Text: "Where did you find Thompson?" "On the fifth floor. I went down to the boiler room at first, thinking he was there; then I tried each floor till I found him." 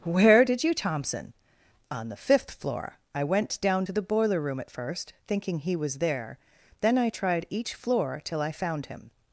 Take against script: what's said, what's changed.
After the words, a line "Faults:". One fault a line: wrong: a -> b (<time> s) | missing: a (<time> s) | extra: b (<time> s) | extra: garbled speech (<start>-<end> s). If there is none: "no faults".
"Where did you Thompson?" "On the fifth floor. I went down to the boiler room at first, thinking he was there; then I tried each floor till I found him."
Faults:
missing: find (0.7 s)